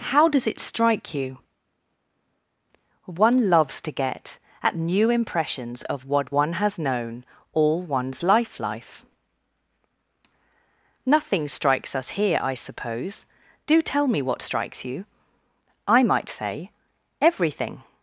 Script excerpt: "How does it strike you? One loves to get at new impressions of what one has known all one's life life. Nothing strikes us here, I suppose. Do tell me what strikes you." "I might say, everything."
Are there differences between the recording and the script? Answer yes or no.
no